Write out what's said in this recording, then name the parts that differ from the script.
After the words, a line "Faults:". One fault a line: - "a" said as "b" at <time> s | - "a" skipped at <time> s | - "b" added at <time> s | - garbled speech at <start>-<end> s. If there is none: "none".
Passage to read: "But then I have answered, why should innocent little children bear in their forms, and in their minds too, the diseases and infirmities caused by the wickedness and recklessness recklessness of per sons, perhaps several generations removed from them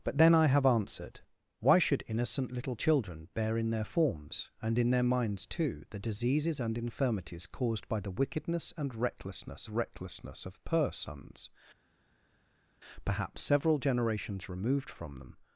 "But then I have answered, why should innocent little children bear in their forms, and in their minds too, the diseases and infirmities caused by the wickedness and recklessness recklessness of per sons, perhaps several generations removed from them
Faults:
none